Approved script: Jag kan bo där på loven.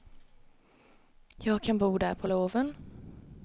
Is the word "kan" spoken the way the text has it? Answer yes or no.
yes